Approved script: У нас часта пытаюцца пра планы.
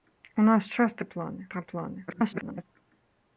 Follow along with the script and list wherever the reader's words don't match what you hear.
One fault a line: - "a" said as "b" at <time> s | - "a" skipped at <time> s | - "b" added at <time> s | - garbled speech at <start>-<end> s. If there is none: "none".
- "пытаюцца" said as "планы" at 1.1 s
- garbled speech at 2.1-2.6 s